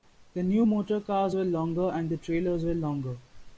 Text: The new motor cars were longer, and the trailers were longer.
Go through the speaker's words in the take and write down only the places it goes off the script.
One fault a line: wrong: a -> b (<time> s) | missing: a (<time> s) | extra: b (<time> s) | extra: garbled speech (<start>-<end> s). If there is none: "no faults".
no faults